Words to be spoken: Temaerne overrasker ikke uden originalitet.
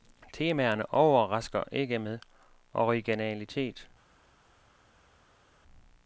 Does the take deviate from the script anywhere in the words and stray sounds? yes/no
yes